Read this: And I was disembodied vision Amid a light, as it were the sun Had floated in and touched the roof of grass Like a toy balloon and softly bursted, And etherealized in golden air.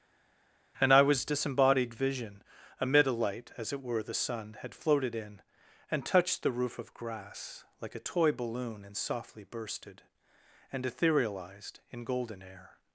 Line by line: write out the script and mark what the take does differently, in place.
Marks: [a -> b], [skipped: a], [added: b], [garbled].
And I was disembodied vision Amid a light, as it were the sun Had floated in and touched the roof of grass Like a toy balloon and softly bursted, And etherealized in golden air.